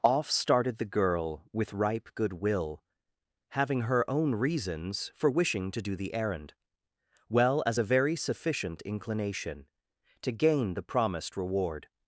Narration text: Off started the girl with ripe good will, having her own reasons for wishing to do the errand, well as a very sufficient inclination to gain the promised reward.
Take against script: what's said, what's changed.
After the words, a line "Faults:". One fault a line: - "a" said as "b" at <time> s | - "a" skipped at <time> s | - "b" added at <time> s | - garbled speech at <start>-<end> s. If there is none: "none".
Off started the girl with ripe good will, having her own reasons for wishing to do the errand, well as a very sufficient inclination to gain the promised reward.
Faults:
none